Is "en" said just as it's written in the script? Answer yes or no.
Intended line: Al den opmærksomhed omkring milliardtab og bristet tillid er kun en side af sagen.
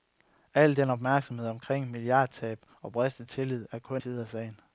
no